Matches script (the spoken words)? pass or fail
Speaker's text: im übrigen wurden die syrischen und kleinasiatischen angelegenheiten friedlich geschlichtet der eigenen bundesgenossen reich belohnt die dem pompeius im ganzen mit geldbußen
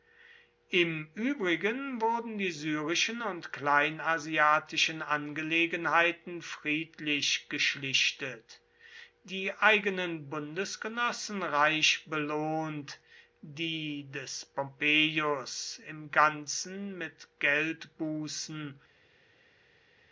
fail